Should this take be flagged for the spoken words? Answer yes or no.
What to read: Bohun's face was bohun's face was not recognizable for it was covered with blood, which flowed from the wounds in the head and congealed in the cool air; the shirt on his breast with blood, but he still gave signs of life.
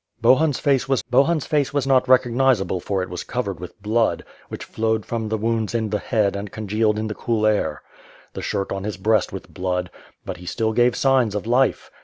no